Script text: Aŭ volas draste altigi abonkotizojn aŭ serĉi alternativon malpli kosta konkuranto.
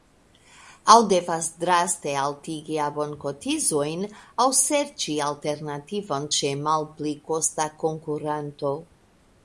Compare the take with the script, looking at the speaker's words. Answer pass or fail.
fail